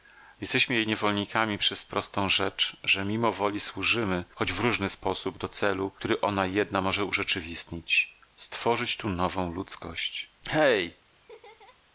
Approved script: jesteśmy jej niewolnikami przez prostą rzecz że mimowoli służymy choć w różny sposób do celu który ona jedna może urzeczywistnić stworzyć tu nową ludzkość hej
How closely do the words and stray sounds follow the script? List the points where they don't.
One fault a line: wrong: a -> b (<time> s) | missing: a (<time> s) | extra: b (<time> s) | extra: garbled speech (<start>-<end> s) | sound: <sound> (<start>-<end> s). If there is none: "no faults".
sound: laugh (11.1-11.8 s)